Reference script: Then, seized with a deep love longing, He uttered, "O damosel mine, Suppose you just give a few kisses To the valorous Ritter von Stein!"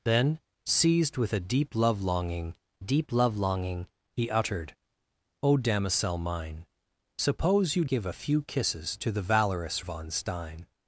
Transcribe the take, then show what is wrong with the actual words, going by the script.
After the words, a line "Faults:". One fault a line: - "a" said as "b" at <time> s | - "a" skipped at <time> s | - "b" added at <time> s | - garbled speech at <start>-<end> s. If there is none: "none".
Then, seized with a deep love longing deep love longing, He uttered, "O damosel mine, Suppose you give a few kisses To the valorous Von Stein!"
Faults:
- "deep love longing" added at 2.8 s
- "just" skipped at 7.8 s
- "Ritter" skipped at 9.8 s